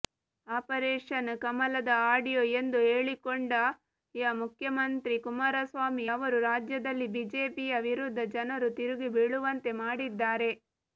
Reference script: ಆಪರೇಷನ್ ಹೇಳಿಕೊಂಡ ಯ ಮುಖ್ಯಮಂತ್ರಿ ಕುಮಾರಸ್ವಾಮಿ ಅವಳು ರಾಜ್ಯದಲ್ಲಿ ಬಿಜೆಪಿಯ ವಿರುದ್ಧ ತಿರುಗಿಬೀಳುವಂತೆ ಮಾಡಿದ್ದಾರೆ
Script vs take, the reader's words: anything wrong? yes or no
yes